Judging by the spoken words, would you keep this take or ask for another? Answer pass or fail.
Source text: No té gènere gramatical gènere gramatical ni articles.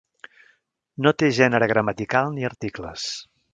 fail